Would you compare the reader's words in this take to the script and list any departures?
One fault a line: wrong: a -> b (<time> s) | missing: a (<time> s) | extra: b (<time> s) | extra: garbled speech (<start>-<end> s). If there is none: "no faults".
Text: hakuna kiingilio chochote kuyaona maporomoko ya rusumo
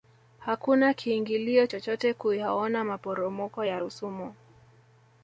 no faults